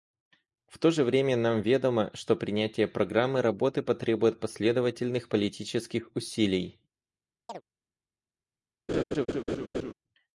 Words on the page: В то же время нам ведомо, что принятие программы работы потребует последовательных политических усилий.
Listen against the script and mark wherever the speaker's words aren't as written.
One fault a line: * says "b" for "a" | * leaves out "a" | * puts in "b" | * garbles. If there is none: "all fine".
all fine